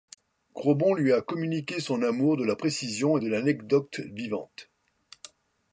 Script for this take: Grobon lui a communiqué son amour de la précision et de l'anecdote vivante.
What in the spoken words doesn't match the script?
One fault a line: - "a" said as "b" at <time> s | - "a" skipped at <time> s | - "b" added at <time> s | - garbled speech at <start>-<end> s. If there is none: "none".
none